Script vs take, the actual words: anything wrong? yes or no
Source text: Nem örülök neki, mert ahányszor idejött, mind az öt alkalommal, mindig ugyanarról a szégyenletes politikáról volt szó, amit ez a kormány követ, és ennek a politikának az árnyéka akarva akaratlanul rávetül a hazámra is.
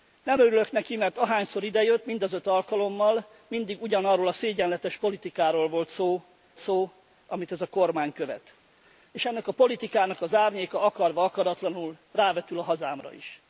yes